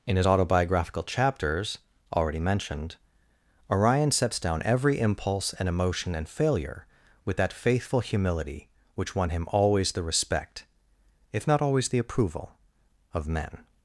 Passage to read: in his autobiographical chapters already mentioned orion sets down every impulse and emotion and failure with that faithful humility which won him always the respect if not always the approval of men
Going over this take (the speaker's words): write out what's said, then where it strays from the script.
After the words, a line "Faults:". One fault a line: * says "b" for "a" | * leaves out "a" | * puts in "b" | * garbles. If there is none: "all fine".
in his autobiographical chapters already mentioned orion sets down every impulse and emotion and failure with that faithful humility which won him always the respect if not always the approval of men
Faults:
all fine